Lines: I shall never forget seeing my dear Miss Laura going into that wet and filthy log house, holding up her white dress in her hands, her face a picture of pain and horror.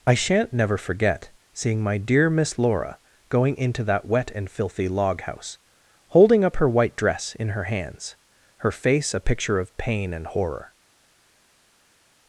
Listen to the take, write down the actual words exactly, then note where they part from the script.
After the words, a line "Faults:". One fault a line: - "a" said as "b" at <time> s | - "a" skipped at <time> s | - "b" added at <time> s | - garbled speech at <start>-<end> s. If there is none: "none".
I shan't never forget seeing my dear Miss Laura going into that wet and filthy log house, holding up her white dress in her hands, her face a picture of pain and horror.
Faults:
- "shall" said as "shan't" at 0.1 s